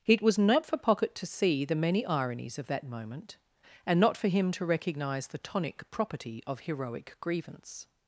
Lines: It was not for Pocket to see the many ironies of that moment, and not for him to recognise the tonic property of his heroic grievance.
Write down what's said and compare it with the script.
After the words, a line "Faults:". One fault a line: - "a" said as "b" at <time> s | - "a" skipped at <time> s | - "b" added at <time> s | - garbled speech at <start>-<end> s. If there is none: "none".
It was not for Pocket to see the many ironies of that moment, and not for him to recognise the tonic property of heroic grievance.
Faults:
- "his" skipped at 6.6 s